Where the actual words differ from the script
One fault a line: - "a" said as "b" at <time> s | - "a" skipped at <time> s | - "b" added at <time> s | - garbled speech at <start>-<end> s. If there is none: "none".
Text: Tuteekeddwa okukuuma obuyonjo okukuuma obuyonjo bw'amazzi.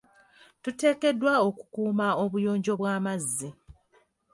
- "okukuuma obuyonjo" skipped at 2.7 s